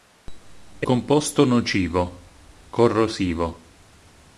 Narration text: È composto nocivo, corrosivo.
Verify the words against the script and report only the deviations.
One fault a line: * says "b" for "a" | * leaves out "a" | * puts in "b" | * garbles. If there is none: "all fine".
all fine